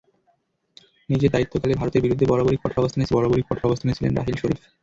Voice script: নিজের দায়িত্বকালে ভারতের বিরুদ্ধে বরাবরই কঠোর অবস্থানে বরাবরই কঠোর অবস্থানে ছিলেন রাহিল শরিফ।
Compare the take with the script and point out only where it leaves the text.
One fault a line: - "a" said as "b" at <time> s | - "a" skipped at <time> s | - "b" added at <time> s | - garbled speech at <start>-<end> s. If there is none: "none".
none